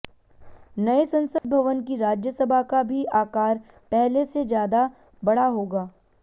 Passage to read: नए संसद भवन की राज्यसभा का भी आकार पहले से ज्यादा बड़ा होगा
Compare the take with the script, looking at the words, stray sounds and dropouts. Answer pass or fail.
fail